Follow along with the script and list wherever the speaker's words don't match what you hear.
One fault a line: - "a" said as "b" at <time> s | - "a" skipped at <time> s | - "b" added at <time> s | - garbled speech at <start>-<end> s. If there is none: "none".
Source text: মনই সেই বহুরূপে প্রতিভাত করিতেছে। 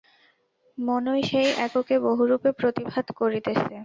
- "এককে" added at 1.7 s